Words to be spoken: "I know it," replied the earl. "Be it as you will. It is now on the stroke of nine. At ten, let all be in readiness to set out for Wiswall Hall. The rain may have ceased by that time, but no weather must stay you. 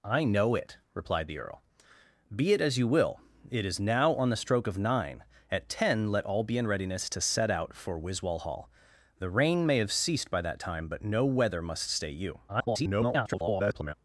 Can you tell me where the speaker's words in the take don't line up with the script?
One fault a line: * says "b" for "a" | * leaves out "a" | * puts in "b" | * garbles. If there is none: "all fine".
* garbles